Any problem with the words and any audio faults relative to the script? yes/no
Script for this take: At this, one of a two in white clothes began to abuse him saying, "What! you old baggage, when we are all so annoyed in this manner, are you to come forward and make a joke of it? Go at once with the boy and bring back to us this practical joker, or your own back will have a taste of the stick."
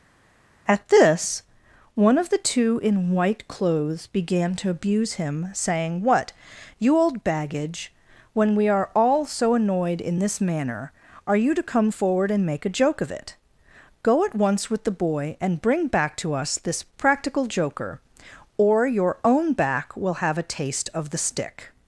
yes